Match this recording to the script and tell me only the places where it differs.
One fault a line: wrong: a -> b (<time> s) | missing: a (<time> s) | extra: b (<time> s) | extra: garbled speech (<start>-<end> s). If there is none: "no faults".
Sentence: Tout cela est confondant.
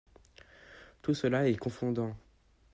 no faults